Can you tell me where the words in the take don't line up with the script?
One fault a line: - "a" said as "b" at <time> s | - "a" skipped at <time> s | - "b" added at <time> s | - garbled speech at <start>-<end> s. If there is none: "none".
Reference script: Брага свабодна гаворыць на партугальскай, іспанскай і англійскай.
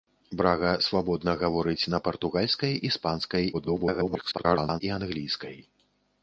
- garbled speech at 3.5-4.8 s